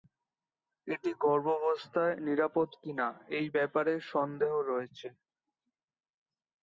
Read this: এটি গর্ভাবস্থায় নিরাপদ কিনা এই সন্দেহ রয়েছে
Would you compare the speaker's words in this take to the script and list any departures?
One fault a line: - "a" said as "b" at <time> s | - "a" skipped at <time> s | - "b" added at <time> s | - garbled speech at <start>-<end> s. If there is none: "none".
- "ব্যাপারে" added at 3.5 s